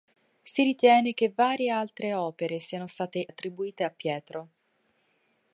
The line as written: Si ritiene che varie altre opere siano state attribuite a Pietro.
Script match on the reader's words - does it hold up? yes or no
yes